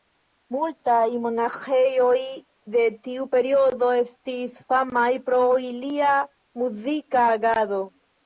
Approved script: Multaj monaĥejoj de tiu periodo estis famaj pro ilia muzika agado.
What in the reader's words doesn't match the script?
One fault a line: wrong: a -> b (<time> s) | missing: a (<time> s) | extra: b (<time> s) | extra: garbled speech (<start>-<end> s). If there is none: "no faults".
no faults